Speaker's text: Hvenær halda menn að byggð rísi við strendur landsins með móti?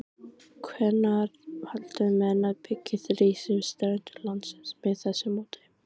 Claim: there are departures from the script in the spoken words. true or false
true